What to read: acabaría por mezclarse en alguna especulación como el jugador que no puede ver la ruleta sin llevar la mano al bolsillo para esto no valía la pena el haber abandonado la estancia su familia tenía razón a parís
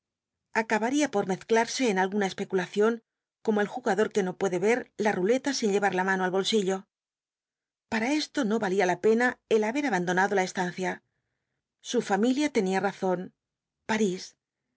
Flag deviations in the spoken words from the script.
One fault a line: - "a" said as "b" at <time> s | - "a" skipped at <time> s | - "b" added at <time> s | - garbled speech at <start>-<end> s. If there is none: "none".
- "a" skipped at 13.3 s